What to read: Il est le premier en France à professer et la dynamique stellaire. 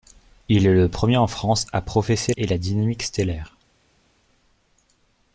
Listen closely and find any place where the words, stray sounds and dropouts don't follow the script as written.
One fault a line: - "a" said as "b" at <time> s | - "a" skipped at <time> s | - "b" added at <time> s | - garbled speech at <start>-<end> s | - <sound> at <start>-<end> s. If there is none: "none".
none